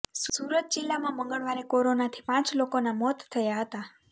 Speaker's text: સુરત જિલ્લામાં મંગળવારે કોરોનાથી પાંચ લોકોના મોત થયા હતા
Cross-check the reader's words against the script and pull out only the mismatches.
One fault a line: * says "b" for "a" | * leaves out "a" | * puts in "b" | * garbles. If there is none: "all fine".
all fine